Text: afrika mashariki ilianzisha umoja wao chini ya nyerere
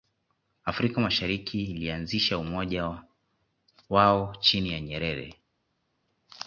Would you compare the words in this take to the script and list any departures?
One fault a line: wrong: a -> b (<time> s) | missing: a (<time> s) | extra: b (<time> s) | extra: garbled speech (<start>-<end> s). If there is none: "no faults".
no faults